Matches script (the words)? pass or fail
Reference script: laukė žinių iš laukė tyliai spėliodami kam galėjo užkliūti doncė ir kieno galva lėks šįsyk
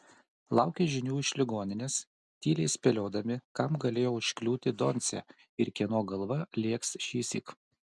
fail